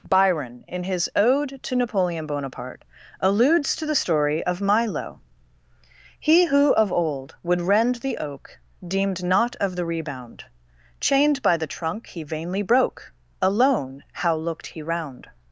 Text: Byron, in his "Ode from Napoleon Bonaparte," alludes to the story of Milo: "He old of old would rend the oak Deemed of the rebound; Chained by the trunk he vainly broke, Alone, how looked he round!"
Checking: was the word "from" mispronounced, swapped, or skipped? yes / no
yes